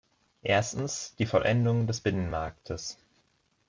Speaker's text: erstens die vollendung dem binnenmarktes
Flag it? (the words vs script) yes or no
yes